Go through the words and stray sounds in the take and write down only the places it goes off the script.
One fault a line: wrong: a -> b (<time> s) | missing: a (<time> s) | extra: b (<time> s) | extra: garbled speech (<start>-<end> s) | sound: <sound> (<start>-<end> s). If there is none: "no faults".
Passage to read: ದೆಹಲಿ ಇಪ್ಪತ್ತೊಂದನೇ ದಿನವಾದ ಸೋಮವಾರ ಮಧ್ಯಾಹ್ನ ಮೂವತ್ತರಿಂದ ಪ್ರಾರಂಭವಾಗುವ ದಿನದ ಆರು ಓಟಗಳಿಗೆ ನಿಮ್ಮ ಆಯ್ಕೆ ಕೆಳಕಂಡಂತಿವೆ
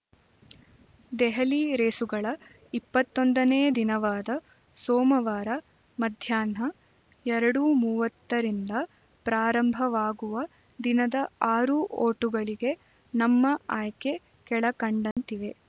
extra: ರೇಸುಗಳ (1.8 s)
extra: ಎರಡು (7.2 s)
wrong: ನಿಮ್ಮ -> ನಮ್ಮ (13.1 s)
sound: dropout (15.1-15.2 s)